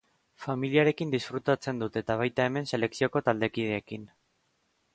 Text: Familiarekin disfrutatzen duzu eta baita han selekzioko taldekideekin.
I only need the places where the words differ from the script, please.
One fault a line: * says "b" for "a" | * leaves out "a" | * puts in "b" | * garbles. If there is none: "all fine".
* says "dut" for "duzu"
* says "hemen" for "han"